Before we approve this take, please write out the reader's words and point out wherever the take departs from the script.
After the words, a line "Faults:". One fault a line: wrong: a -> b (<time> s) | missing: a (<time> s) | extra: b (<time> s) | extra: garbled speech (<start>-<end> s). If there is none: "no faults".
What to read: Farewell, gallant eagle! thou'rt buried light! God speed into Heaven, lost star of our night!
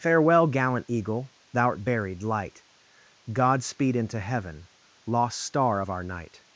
Farewell, gallant eagle! thou'rt buried light! God speed into Heaven, lost star of our night!
Faults:
no faults